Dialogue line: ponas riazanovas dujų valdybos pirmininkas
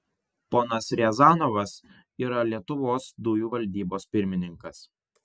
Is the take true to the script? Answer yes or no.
no